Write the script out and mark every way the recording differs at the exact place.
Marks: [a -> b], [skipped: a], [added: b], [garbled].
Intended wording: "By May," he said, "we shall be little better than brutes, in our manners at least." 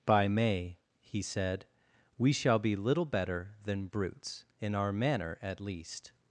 "By May," he said, "we shall be little better than brutes, in our [manners -> manner] at least."